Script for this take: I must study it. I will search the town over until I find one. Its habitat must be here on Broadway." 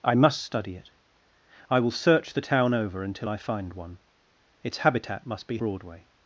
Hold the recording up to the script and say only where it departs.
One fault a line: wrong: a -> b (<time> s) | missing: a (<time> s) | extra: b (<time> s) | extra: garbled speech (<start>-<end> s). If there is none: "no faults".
missing: here on (5.6 s)